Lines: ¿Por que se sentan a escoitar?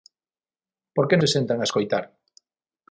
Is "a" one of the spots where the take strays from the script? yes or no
no